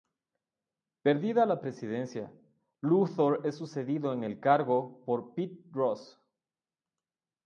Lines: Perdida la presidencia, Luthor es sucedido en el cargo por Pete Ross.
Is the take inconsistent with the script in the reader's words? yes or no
no